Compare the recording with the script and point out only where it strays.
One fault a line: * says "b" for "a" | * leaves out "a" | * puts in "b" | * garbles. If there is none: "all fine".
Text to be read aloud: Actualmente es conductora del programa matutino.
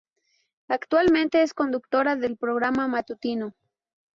all fine